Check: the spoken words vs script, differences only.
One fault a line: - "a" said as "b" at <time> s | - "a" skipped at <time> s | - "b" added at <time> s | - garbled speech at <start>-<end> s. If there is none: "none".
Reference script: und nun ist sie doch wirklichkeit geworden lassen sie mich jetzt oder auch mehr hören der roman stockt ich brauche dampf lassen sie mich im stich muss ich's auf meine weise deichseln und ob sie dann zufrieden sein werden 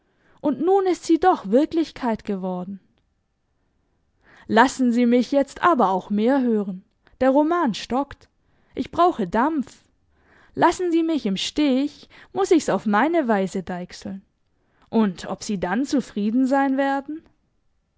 - "oder" said as "aber" at 5.6 s